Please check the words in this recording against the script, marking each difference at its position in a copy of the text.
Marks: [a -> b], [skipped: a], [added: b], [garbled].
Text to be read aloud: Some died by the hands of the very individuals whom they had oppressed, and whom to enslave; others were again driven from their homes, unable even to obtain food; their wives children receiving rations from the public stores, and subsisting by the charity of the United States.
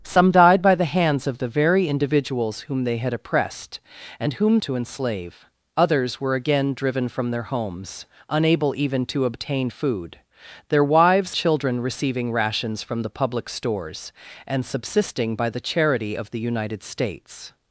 Some died by the hands of the very individuals whom they had oppressed, and whom to enslave; others were again driven from their homes, unable even to obtain food; their wives children receiving rations from the public stores, and subsisting by the charity of the United States.